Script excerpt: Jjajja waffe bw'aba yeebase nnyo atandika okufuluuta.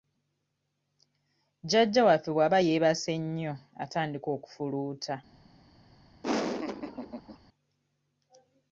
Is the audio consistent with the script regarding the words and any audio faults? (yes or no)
no